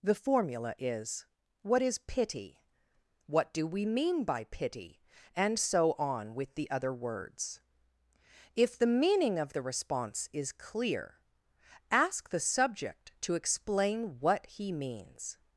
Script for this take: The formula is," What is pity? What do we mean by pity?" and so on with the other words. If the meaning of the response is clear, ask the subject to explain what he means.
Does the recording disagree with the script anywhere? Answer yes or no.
no